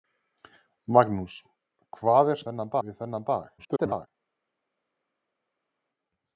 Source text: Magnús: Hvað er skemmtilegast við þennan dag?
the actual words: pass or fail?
fail